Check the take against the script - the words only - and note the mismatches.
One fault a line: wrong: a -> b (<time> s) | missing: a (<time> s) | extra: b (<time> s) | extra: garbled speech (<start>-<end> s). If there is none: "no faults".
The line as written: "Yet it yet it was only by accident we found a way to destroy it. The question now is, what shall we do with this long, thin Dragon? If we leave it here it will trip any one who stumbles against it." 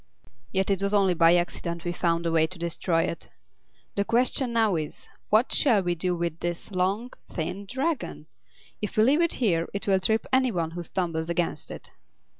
missing: yet it (0.8 s)